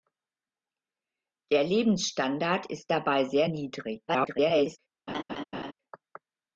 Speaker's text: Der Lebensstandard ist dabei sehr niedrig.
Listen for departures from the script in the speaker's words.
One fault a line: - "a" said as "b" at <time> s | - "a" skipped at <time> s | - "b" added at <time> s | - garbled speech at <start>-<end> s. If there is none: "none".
- garbled speech at 4.1-4.8 s